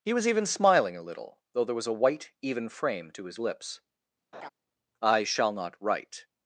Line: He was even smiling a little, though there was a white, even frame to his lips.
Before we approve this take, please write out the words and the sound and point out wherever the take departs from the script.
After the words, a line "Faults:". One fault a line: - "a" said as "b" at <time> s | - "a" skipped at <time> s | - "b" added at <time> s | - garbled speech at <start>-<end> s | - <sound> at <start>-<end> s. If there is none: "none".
He was even smiling a little, though there was a white, even frame to his lips. "I shall not write
Faults:
- laugh at 4.3-4.5 s
- "I shall not write" added at 5.0 s